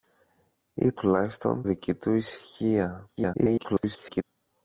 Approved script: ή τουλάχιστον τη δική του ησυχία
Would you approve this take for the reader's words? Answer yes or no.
no